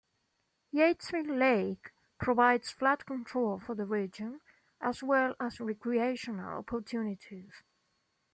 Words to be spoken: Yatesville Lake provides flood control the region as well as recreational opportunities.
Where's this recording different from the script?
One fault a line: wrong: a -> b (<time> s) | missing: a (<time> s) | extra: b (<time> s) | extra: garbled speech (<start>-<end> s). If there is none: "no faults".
extra: for (3.6 s)